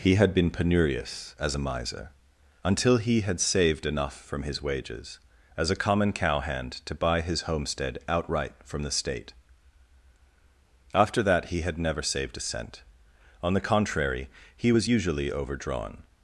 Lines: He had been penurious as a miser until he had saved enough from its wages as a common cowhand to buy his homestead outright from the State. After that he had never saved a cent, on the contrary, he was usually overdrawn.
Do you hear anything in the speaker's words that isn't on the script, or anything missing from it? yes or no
yes